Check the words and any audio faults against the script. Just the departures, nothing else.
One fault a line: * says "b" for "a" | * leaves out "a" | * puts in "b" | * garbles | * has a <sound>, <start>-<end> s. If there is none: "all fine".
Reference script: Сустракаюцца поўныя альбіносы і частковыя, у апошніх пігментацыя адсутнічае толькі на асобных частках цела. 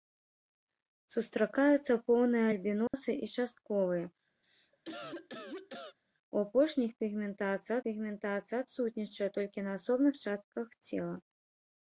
* has a dropout, 2.9-2.9 s
* has a cough, 4.4-6.0 s
* puts in "пігментацыя"